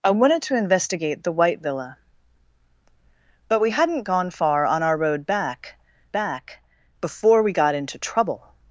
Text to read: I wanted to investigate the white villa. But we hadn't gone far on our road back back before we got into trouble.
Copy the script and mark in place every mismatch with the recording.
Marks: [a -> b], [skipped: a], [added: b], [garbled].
I wanted to investigate the white villa. But we hadn't gone far on our road back back before we got into trouble.